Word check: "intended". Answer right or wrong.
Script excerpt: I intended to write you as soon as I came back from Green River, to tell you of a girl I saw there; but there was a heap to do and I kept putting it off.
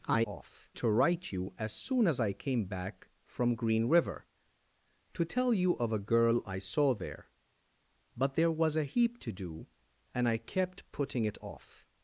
wrong